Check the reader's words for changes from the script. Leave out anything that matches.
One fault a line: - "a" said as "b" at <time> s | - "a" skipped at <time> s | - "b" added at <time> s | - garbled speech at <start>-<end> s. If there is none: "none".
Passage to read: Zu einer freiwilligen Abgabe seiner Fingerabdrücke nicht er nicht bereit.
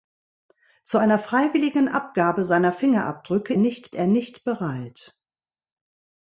none